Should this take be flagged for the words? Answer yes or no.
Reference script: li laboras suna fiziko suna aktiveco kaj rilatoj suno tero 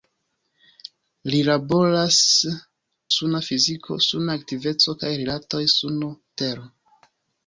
no